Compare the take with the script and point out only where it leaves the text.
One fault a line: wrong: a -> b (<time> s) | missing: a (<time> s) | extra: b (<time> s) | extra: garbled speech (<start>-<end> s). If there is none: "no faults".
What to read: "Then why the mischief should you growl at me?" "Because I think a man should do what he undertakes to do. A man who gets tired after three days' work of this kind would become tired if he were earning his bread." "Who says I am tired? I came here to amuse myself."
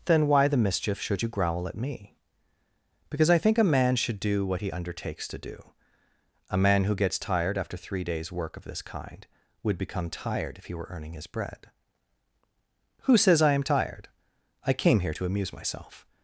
no faults